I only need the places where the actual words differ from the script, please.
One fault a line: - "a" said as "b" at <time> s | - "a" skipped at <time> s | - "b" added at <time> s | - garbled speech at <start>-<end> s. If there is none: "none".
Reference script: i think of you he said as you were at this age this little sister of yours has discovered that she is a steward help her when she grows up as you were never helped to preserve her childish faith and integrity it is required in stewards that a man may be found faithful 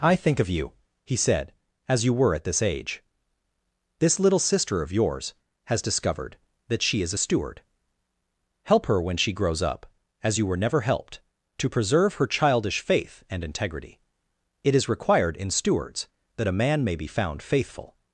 none